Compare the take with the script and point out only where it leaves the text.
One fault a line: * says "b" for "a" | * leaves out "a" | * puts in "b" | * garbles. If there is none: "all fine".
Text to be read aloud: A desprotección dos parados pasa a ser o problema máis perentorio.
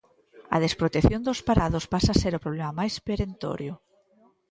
all fine